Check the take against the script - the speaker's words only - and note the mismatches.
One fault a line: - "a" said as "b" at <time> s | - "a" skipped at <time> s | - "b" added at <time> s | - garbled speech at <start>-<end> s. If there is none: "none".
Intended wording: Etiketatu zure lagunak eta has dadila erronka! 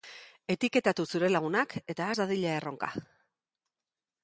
none